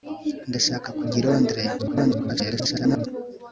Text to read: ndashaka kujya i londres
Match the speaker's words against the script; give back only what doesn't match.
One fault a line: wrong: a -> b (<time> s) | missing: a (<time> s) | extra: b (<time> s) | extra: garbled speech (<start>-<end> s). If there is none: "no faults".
extra: garbled speech (1.8-3.1 s)